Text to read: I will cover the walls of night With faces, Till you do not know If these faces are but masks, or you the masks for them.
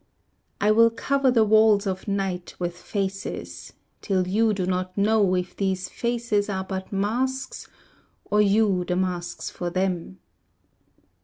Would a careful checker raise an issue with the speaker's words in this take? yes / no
no